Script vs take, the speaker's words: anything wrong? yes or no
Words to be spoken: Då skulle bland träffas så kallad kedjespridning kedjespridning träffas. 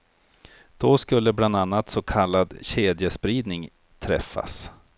yes